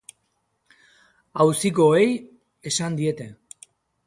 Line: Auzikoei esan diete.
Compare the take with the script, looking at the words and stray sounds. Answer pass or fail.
pass